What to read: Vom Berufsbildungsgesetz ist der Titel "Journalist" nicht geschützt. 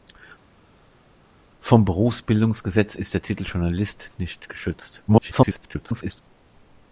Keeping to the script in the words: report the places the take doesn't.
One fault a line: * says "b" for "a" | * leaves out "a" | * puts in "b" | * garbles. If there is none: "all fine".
* garbles